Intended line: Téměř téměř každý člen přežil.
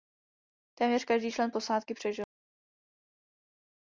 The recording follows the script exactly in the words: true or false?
false